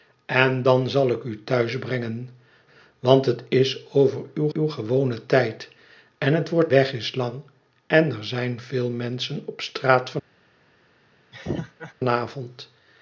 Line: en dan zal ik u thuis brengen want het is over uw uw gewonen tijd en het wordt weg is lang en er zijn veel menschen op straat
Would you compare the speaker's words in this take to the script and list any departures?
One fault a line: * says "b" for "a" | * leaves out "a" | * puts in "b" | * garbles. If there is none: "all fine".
all fine